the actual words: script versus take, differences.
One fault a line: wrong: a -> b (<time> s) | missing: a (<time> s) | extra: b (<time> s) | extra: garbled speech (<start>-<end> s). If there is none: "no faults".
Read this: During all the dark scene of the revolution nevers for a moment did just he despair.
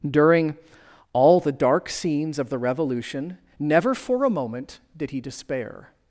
wrong: scene -> scenes (1.9 s)
wrong: nevers -> never (3.6 s)
missing: just (5.1 s)